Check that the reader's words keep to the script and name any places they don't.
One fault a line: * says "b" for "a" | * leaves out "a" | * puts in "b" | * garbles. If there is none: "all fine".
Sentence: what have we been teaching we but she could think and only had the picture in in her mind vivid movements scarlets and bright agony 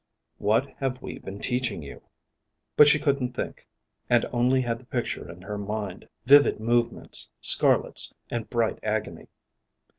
* says "you" for "we"
* says "couldn't" for "could"
* leaves out "in"